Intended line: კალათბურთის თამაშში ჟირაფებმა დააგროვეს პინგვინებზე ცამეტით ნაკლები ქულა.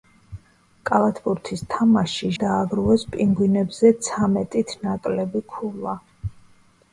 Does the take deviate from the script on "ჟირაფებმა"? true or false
true